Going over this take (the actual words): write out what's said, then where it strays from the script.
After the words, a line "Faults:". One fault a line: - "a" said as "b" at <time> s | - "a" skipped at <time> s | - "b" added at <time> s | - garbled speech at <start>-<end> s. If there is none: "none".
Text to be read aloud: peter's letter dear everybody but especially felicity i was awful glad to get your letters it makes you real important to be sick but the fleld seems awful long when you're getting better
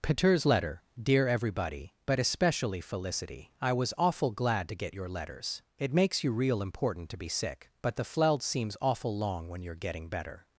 peter's letter dear everybody but especially felicity i was awful glad to get your letters it makes you real important to be sick but the fleld seems awful long when you're getting better
Faults:
none